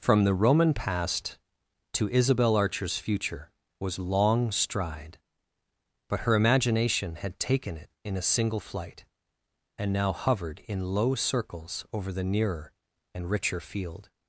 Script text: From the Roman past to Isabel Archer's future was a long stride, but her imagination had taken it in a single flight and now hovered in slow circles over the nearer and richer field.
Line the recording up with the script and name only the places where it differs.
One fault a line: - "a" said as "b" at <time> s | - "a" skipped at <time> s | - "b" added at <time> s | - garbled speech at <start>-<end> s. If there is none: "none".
- "a" skipped at 4.0 s
- "slow" said as "low" at 10.9 s